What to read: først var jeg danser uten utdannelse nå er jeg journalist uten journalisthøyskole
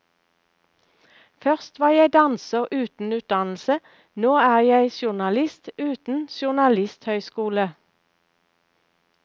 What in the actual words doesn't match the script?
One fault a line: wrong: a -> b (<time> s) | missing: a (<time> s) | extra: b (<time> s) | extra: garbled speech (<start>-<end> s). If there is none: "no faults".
no faults